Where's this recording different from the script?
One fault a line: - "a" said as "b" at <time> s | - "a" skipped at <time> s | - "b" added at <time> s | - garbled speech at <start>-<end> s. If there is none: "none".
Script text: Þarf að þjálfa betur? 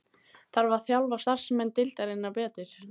- "starfsmenn deildarinnar" added at 1.2 s